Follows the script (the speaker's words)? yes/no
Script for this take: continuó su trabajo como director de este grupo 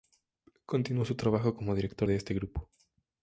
yes